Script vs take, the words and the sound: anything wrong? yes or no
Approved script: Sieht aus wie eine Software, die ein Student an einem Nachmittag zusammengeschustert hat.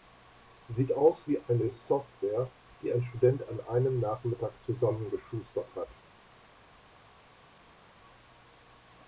no